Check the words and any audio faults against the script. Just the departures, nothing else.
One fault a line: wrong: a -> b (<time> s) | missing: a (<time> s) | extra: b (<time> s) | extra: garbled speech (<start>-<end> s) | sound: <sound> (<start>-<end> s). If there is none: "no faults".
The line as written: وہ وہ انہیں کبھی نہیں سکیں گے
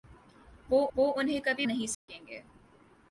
sound: dropout (1.9-2.1 s)